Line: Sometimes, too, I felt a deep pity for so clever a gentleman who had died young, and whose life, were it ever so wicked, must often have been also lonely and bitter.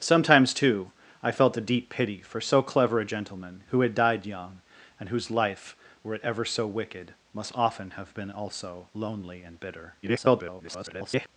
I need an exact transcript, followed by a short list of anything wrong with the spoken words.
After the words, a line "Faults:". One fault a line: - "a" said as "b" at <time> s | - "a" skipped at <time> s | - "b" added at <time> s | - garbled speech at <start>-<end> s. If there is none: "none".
Sometimes, too, I felt a deep pity for so clever a gentleman who had died young, and whose life, were it ever so wicked, must often have been also lonely and bitter. [garbled]
Faults:
- garbled speech at 10.0-11.3 s